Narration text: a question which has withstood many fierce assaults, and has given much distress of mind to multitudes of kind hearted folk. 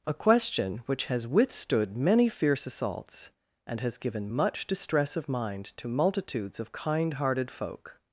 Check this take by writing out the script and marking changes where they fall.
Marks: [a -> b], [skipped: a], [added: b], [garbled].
a question which has withstood many fierce assaults, and has given much distress of mind to multitudes of kind hearted folk.